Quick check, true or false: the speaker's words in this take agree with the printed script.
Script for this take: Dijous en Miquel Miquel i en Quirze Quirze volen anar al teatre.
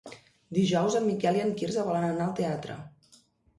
false